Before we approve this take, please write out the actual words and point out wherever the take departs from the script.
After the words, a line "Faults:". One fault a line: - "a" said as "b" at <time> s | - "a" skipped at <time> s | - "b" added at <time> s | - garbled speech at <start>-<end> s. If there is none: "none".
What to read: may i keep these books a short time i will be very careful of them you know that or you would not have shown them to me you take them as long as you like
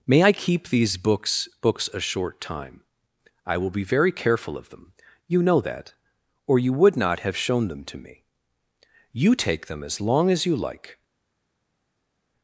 may i keep these books books a short time i will be very careful of them you know that or you would not have shown them to me you take them as long as you like
Faults:
- "books" added at 1.6 s